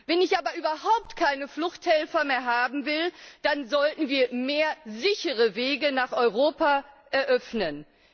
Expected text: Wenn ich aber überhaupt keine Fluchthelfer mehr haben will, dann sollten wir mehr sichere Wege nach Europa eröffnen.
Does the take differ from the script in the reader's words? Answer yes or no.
no